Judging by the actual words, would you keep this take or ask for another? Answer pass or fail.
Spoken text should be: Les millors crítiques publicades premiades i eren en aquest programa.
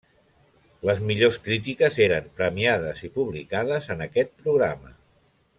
fail